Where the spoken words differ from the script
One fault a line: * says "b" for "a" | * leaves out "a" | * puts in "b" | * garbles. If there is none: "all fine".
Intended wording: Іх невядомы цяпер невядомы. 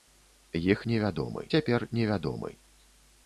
all fine